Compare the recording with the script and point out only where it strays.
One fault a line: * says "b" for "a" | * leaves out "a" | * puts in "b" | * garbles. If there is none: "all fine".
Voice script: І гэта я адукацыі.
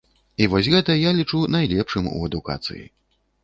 * puts in "вось"
* puts in "лічу найлепшым у"